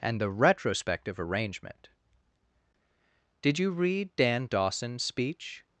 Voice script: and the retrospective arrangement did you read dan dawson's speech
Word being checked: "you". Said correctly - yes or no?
yes